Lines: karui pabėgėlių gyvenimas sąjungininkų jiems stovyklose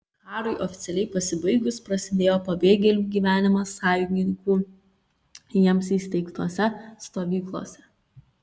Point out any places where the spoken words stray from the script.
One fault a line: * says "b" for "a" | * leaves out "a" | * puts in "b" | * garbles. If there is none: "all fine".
* puts in "oficialiai pasibaigus prasidėjo"
* puts in "įsteigtose"